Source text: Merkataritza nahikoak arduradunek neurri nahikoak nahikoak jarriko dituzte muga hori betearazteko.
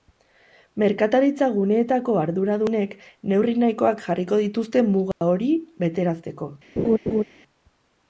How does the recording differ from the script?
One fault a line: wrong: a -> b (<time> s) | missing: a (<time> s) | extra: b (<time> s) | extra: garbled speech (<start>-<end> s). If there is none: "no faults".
wrong: nahikoak -> guneetako (1.6 s)
missing: nahikoak (4.0 s)